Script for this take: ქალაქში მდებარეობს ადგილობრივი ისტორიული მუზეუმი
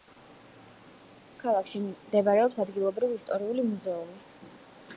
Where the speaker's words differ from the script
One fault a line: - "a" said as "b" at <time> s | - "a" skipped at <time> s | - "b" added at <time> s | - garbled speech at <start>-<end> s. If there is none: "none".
none